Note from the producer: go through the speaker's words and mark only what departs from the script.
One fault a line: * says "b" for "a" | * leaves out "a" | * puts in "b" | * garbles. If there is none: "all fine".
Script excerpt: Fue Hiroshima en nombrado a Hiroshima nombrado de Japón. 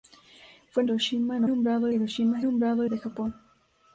all fine